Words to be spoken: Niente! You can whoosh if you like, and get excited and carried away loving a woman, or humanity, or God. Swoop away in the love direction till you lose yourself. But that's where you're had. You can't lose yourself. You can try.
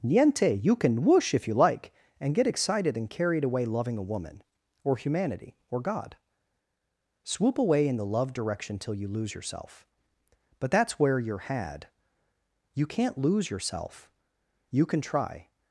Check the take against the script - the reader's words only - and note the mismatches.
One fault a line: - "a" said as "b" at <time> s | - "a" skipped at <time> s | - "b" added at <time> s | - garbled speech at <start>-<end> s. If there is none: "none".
none